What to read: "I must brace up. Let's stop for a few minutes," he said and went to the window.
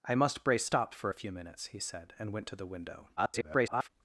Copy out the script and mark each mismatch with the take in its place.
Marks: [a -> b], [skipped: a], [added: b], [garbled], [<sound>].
"I must brace [skipped: up. Let's] stop for a few minutes," he said and went to the window. [garbled]